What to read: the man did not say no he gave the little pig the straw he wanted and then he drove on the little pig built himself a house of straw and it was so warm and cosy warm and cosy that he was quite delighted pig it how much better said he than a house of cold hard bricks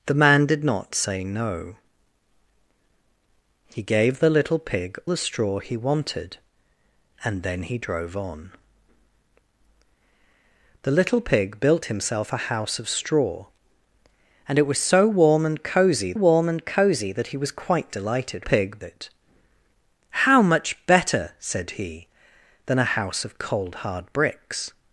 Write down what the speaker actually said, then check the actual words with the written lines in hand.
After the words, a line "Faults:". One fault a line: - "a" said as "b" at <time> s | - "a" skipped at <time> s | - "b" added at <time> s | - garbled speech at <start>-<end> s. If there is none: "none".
the man did not say no he gave the little pig the straw he wanted and then he drove on the little pig built himself a house of straw and it was so warm and cosy warm and cosy that he was quite delighted pig it how much better said he than a house of cold hard bricks
Faults:
none